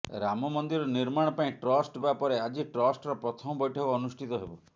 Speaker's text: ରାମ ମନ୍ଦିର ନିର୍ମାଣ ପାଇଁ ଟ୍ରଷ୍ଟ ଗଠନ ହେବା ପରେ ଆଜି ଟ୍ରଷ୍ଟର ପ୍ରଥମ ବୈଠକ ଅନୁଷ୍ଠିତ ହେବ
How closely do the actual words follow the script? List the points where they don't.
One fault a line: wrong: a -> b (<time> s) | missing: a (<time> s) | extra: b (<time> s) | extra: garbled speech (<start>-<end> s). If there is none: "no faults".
missing: ଗଠନ (2.0 s)